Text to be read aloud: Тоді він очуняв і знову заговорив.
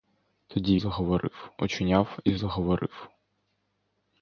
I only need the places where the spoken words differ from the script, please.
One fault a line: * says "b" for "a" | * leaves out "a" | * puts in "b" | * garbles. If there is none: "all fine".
* says "заговорив" for "він"
* leaves out "знову"